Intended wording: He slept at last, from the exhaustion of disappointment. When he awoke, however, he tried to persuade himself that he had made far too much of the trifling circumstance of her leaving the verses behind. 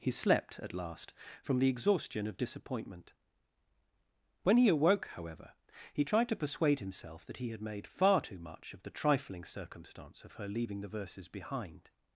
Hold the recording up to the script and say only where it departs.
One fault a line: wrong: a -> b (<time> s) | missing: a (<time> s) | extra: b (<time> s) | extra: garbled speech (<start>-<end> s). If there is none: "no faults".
no faults